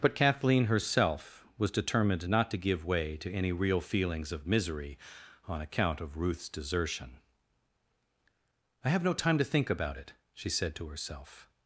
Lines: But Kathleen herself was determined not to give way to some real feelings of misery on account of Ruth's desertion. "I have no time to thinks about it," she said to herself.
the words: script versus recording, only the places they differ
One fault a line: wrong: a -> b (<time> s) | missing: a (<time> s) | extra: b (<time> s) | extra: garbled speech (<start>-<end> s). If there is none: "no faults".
wrong: some -> any (3.3 s)
wrong: thinks -> think (9.4 s)